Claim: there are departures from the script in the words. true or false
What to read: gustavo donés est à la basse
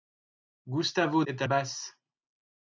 true